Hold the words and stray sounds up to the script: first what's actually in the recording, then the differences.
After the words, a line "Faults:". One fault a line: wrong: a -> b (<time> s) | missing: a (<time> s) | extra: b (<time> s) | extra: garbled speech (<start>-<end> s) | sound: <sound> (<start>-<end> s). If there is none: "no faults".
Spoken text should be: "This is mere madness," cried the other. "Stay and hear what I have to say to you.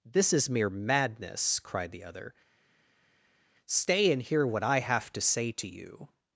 "This is mere madness," cried the other. "Stay and hear what I have to say to you.
Faults:
no faults